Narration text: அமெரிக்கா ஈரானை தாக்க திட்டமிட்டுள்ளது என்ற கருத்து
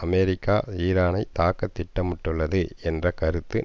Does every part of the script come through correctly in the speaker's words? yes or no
yes